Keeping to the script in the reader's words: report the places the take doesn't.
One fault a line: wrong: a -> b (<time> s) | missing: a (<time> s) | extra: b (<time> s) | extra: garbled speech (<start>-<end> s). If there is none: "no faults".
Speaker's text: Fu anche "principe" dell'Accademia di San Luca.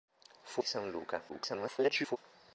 missing: anche principe dell'Accademia (0.6 s)
extra: garbled speech (1.3-2.2 s)